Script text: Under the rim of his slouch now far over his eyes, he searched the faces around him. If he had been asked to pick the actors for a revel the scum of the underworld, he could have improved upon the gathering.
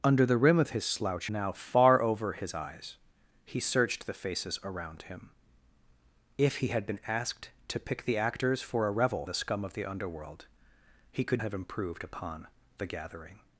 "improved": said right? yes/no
yes